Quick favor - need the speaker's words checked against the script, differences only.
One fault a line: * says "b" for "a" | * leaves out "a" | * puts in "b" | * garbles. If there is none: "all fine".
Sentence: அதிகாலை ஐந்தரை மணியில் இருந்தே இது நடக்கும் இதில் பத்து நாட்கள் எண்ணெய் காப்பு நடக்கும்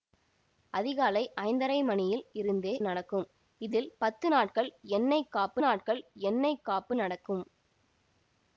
* leaves out "இது"
* puts in "நாட்கள் எண்ணெய் காப்பு"